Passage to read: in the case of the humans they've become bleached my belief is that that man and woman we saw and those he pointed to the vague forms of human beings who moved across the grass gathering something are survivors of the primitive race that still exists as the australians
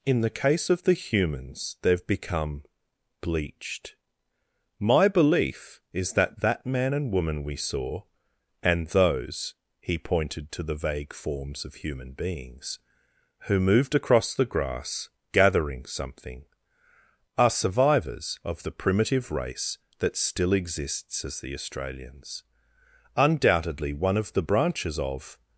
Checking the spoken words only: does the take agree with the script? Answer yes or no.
no